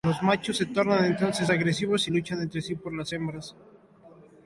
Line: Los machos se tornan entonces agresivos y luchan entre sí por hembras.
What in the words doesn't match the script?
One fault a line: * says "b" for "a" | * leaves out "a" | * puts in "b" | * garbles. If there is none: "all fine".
* puts in "las"